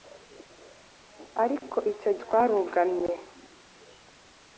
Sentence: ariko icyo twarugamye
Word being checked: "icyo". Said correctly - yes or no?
yes